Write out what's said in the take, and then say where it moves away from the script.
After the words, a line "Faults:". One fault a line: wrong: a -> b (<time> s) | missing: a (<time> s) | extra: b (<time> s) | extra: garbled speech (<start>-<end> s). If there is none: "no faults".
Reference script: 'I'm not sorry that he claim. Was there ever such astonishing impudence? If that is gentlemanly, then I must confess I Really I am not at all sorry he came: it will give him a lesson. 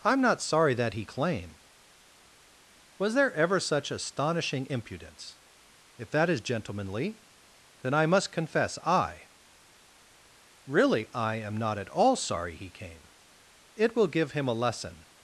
'I'm not sorry that he claim. Was there ever such astonishing impudence? If that is gentlemanly, then I must confess I Really I am not at all sorry he came: it will give him a lesson.
Faults:
no faults